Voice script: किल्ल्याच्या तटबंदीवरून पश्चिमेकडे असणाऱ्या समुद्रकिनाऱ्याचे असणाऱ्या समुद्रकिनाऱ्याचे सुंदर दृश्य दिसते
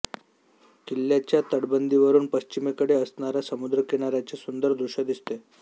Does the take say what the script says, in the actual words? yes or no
no